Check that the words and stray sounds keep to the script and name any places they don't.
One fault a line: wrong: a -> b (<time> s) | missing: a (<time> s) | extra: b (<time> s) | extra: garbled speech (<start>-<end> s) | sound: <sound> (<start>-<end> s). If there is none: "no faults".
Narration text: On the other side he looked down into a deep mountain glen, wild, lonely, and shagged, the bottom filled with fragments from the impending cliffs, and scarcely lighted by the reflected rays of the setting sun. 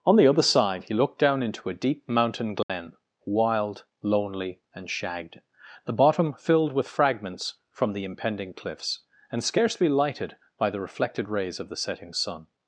sound: dropout (2.6-2.7 s)